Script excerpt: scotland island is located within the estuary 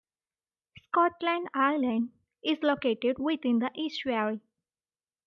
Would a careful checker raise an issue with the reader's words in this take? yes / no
no